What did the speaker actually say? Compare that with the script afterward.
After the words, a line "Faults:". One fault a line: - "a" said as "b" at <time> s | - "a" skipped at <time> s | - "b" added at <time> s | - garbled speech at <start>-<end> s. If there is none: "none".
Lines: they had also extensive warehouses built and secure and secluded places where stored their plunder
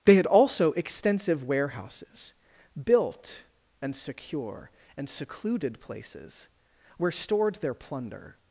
they had also extensive warehouses built and secure and secluded places where stored their plunder
Faults:
none